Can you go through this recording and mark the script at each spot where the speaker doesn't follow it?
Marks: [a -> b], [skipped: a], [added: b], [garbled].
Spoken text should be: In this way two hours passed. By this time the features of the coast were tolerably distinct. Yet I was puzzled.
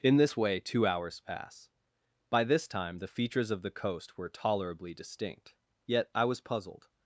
In this way two hours [passed. -> pass] By this time the features of the coast were tolerably distinct. Yet I was puzzled.